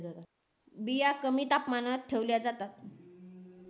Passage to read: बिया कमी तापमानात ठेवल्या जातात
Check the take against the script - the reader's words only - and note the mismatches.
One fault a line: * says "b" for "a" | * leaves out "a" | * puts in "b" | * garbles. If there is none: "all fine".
all fine